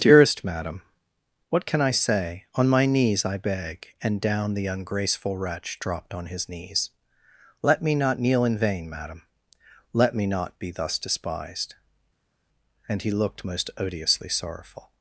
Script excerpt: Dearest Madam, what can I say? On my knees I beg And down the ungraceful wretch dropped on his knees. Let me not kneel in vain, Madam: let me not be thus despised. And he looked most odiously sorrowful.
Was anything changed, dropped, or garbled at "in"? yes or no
no